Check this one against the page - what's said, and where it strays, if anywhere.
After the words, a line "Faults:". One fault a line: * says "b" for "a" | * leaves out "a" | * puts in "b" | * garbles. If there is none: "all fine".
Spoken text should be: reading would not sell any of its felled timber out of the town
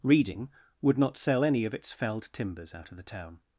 reading would not sell any of its felled timbers out of the town
Faults:
* says "timbers" for "timber"